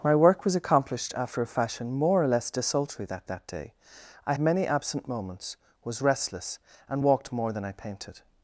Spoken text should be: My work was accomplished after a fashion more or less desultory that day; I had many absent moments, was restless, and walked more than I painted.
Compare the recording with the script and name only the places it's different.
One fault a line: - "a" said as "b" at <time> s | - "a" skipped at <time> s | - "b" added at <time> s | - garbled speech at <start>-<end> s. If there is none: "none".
- "that" added at 3.2 s
- "had" skipped at 4.3 s